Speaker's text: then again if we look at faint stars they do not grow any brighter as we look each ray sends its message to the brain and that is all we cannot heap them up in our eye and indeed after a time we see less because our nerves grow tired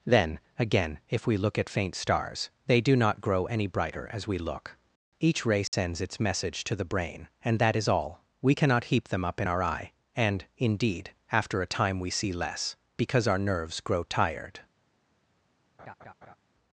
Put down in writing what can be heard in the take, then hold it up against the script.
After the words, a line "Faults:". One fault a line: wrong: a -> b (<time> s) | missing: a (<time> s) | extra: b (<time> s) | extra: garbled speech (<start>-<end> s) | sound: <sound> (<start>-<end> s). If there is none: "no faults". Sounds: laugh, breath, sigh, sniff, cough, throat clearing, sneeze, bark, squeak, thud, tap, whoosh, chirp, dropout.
then again if we look at faint stars they do not grow any brighter as we look each ray sends its message to the brain and that is all we cannot heap them up in our eye and indeed after a time we see less because our nerves grow tired
Faults:
sound: dropout (5.7-5.7 s)
sound: laugh (15.8-16.4 s)